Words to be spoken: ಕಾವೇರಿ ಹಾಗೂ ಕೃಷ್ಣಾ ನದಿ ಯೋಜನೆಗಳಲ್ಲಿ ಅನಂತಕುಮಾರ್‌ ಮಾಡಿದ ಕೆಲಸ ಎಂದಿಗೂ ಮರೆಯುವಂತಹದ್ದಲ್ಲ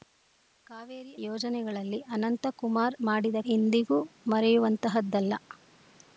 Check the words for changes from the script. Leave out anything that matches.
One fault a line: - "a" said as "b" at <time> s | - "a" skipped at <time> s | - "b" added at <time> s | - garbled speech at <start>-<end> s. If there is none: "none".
- "ಹಾಗೂ ಕೃಷ್ಣಾ ನದಿ" skipped at 1.1 s
- "ಕೆಲಸ" skipped at 3.4 s